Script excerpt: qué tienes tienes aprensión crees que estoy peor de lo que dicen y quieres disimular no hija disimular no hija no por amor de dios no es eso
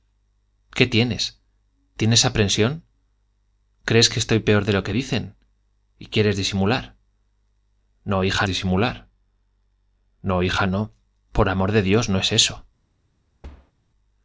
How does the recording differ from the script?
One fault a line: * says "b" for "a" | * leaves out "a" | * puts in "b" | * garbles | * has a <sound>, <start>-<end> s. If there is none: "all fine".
* has a thud, 13.4-13.7 s